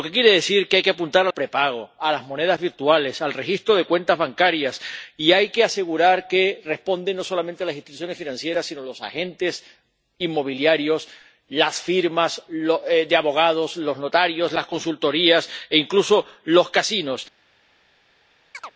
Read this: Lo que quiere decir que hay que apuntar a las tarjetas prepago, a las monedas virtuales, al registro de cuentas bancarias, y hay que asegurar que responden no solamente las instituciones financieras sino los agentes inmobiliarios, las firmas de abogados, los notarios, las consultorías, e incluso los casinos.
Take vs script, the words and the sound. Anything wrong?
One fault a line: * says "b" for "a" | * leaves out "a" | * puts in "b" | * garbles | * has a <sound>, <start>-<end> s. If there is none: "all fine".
* leaves out "las tarjetas"
* has a chirp, 18.5-18.7 s